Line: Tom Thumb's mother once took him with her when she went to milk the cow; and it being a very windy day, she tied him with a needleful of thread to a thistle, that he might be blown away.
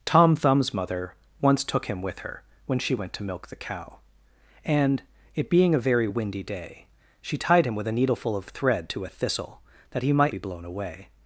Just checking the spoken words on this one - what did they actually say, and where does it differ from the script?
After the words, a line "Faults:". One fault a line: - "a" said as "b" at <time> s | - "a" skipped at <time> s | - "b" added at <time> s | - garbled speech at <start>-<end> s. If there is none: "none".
Tom Thumb's mother once took him with her when she went to milk the cow; and it being a very windy day, she tied him with a needleful of thread to a thistle, that he might be blown away.
Faults:
none